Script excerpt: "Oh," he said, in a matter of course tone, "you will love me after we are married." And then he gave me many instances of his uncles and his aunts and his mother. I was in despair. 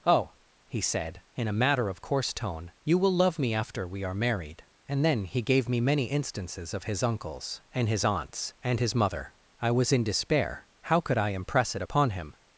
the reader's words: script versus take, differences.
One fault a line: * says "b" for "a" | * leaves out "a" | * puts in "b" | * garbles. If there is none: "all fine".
* puts in "How could I impress it upon him"